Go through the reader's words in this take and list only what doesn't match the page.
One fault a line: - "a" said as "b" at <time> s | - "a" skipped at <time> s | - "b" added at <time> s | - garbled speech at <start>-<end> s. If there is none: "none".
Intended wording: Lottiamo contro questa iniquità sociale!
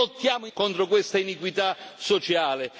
none